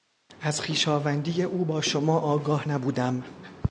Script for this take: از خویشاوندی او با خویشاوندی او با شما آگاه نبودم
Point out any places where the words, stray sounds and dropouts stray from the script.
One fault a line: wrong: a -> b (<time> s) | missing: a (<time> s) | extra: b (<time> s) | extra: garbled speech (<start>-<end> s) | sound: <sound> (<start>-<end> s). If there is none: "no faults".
missing: خویشاوندی او با (1.8 s)